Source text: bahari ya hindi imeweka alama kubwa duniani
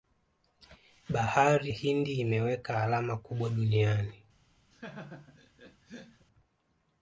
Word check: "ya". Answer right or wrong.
wrong